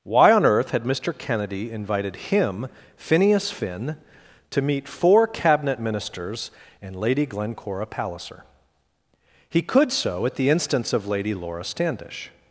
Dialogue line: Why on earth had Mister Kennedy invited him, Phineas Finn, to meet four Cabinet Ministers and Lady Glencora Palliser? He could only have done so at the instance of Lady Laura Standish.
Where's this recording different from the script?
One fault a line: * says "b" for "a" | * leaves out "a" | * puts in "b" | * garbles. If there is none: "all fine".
* leaves out "only have done"